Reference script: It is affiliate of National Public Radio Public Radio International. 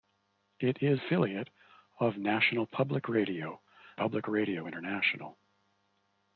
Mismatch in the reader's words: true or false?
false